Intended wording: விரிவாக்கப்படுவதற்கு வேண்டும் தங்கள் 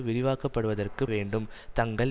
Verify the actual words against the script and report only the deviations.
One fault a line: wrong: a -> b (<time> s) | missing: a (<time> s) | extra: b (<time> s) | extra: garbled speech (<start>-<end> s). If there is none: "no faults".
no faults